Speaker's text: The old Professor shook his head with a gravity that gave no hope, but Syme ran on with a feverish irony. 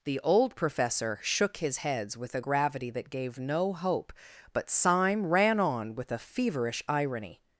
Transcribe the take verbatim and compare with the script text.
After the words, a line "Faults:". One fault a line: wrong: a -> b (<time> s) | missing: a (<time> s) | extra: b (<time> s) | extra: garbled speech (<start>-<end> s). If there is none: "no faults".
The old Professor shook his heads with a gravity that gave no hope, but Syme ran on with a feverish irony.
Faults:
wrong: head -> heads (1.8 s)